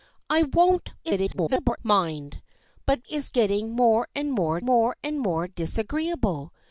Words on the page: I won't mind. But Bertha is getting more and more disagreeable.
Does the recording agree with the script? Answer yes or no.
no